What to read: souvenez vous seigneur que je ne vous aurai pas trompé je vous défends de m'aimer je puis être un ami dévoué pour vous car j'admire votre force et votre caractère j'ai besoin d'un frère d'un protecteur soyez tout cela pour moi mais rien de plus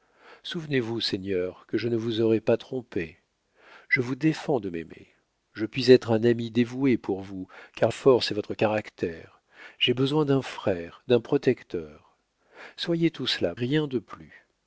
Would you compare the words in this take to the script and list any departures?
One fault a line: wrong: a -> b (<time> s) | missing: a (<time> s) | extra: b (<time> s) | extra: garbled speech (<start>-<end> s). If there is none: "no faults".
missing: j'admire votre (7.9 s)
missing: pour moi mais (13.5 s)